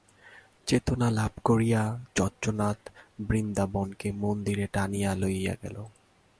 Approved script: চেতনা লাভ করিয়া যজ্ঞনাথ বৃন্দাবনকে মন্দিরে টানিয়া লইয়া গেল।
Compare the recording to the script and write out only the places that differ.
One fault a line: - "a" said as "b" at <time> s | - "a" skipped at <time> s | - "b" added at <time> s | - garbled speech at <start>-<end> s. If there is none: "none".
none